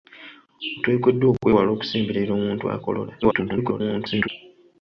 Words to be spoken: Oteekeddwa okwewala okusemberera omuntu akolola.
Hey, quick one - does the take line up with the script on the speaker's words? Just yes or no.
no